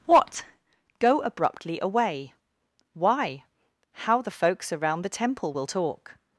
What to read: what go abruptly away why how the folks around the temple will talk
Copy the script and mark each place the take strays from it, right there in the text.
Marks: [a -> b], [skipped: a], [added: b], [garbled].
what go abruptly away why how the folks around the temple will talk